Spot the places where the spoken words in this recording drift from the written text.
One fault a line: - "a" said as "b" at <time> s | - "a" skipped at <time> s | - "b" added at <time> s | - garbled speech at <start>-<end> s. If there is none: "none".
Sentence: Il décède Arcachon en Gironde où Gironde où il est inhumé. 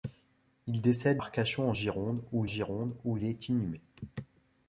none